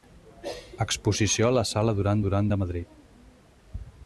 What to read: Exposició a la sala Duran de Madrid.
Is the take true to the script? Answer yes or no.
no